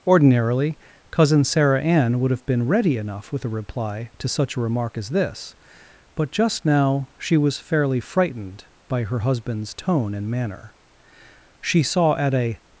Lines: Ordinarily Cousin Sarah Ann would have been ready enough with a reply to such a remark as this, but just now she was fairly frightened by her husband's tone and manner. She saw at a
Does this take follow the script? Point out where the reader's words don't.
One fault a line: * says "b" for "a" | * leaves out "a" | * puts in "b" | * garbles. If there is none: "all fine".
all fine